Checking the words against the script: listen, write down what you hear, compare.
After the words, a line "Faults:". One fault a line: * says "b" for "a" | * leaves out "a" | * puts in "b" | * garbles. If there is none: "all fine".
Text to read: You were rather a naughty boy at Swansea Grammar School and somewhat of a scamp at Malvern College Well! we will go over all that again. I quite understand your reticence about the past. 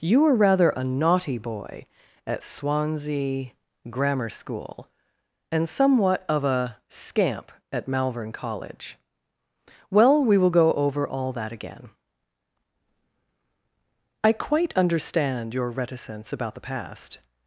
You were rather a naughty boy at Swansea Grammar School and somewhat of a scamp at Malvern College Well! we will go over all that again. I quite understand your reticence about the past.
Faults:
all fine